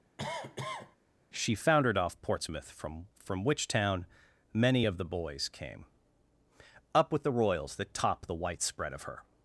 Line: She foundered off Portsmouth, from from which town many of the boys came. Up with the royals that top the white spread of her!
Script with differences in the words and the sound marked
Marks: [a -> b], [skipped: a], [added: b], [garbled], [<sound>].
[cough] She foundered off Portsmouth, from from which town many of the boys came. Up with the royals that top the white spread of her!